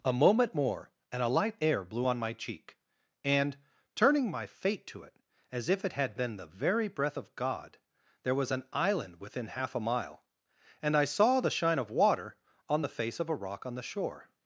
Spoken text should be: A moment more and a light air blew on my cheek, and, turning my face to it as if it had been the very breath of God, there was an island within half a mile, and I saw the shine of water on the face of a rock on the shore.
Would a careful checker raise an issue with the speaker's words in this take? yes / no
yes